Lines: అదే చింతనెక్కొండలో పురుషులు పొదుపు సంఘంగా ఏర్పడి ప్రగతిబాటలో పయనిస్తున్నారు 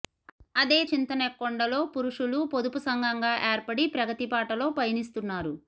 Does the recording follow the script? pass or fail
pass